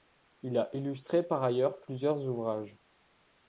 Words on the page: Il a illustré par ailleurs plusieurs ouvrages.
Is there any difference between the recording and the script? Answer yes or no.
no